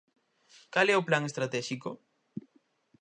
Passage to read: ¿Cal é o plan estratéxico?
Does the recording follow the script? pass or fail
pass